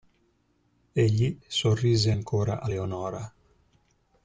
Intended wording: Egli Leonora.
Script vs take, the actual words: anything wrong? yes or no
yes